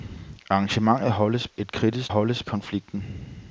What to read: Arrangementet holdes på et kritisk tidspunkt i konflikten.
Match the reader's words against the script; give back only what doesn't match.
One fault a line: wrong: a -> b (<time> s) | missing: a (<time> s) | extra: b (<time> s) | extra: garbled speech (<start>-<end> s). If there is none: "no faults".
missing: på (1.5 s)
wrong: tidspunkt -> holdes (2.1 s)